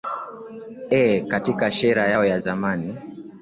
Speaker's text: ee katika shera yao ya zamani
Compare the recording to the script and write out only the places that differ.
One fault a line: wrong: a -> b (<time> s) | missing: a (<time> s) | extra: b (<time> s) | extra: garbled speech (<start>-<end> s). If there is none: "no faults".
no faults